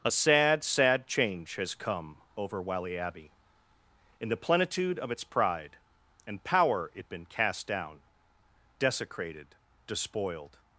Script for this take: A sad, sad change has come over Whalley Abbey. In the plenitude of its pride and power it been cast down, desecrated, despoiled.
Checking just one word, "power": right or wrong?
right